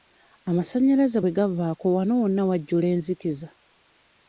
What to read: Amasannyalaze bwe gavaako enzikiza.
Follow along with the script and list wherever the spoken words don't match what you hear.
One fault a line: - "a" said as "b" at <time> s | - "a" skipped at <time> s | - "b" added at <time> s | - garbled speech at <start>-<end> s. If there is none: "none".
- "wano wonna wajjula" added at 2.0 s